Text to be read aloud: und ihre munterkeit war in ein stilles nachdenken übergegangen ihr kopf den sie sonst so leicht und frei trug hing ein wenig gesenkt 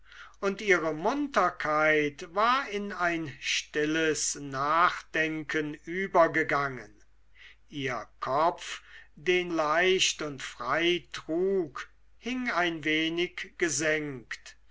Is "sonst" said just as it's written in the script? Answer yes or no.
no